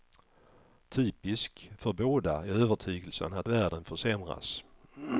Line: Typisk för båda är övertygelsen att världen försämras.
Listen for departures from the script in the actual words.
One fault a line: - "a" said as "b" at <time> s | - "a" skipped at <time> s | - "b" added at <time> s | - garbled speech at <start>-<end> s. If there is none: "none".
none